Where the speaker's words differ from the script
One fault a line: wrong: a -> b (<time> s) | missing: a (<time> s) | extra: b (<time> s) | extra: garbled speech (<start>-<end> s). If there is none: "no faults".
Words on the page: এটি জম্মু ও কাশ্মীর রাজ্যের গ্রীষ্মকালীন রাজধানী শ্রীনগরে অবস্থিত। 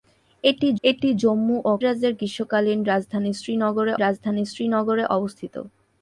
extra: এটি (0.8 s)
missing: কাশ্মীর (1.7 s)
extra: রাজধানী শ্রীনগরে (4.0 s)